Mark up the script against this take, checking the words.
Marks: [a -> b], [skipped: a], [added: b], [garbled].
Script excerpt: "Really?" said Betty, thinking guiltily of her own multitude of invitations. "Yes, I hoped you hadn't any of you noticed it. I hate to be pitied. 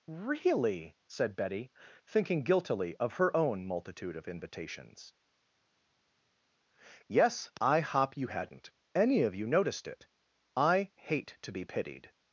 "Really?" said Betty, thinking guiltily of her own multitude of invitations. "Yes, I [hoped -> hop] you hadn't any of you noticed it. I hate to be pitied.